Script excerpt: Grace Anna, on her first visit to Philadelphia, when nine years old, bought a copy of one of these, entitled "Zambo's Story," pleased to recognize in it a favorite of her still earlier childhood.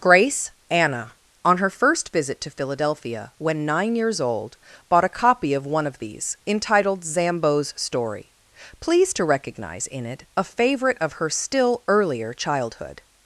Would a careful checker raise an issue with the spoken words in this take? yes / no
no